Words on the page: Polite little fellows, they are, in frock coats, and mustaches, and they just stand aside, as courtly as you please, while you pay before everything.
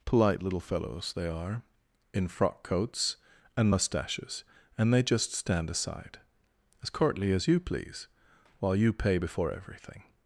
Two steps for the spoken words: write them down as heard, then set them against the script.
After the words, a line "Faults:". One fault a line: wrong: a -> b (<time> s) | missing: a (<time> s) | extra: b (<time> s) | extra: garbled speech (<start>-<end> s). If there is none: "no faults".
Polite little fellows, they are, in frock coats, and mustaches, and they just stand aside, as courtly as you please, while you pay before everything.
Faults:
no faults